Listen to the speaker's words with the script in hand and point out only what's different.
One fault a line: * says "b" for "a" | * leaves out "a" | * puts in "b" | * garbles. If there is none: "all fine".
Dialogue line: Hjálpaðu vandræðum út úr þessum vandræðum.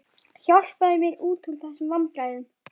* says "mér" for "vandræðum"